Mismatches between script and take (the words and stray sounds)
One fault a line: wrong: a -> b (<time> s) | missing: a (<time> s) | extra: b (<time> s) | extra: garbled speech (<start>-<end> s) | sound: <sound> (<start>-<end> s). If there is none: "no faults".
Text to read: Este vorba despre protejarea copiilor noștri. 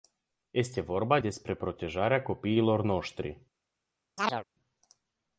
sound: chirp (4.2-4.4 s)